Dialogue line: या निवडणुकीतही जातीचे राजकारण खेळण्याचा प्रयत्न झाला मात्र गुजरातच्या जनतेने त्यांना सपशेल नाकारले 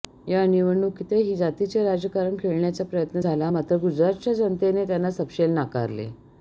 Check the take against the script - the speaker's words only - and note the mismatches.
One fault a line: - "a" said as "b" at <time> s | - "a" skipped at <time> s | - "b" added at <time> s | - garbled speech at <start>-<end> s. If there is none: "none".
none